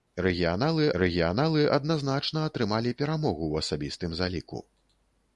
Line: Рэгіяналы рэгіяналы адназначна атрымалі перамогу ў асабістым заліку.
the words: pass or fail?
pass